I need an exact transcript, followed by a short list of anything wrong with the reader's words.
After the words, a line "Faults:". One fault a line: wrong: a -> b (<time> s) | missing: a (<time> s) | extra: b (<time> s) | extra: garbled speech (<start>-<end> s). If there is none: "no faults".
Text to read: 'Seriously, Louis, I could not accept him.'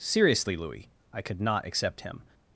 'Seriously, Louis, I could not accept him.'
Faults:
no faults